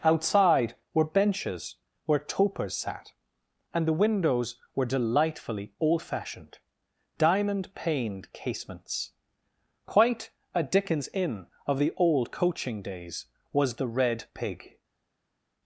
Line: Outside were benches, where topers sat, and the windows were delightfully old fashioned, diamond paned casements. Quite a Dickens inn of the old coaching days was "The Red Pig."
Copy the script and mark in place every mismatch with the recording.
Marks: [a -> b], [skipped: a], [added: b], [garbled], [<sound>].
Outside were benches, where topers sat, and the windows were delightfully old fashioned, diamond paned casements. Quite a Dickens inn of the old coaching days was "The Red Pig."